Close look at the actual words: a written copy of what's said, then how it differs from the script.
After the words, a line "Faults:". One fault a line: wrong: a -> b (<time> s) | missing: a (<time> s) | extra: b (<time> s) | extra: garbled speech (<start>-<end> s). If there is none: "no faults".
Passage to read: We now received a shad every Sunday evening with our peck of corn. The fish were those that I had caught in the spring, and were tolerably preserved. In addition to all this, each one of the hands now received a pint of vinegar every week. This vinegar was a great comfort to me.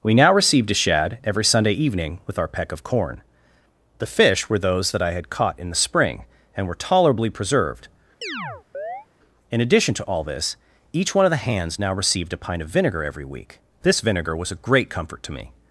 We now received a shad every Sunday evening with our peck of corn. The fish were those that I had caught in the spring, and were tolerably preserved. In addition to all this, each one of the hands now received a pint of vinegar every week. This vinegar was a great comfort to me.
Faults:
no faults